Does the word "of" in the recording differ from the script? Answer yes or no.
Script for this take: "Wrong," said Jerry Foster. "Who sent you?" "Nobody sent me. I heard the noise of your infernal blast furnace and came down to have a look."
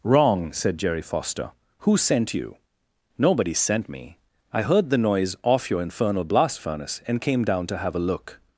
yes